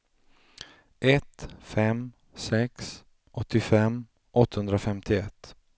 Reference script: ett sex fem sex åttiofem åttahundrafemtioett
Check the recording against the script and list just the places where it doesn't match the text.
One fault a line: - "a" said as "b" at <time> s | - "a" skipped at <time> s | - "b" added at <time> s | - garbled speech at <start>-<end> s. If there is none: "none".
- "sex" skipped at 1.5 s